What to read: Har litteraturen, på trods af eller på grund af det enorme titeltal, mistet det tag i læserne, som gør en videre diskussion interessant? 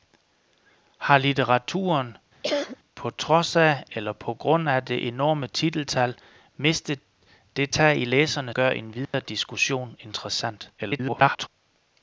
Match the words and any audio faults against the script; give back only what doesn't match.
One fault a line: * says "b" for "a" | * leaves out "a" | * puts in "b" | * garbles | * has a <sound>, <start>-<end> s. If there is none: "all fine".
* has a cough, 2.4-2.8 s
* leaves out "som"
* has a dropout, 9.0-9.1 s
* garbles